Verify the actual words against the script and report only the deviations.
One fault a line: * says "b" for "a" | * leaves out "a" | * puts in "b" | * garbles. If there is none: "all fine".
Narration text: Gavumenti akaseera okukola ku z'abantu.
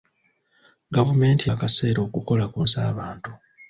all fine